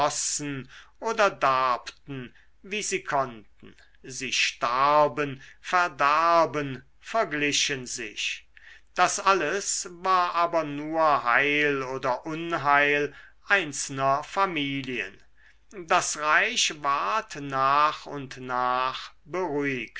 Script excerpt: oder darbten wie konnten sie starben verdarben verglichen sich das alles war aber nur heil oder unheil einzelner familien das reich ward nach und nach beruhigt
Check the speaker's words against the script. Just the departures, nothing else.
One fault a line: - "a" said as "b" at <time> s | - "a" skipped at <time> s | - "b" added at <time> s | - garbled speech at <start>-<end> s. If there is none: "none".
- "sie" added at 2.8 s